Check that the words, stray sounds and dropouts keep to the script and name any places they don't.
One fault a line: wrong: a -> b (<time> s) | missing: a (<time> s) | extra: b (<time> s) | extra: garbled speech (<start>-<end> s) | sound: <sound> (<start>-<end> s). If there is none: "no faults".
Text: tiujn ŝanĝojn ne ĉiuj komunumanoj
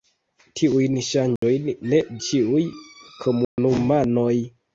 sound: dropout (1.4-1.4 s)
sound: dropout (3.4-3.6 s)